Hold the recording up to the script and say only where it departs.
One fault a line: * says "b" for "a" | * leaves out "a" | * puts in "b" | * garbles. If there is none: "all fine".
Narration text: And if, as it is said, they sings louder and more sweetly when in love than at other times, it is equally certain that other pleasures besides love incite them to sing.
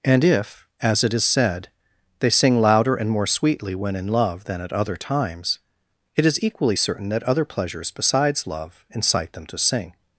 * says "sing" for "sings"